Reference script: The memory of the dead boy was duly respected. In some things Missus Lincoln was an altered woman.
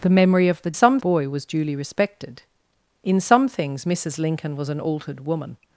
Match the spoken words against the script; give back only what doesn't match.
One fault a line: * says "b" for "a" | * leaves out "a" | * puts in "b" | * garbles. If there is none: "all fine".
* says "some" for "dead"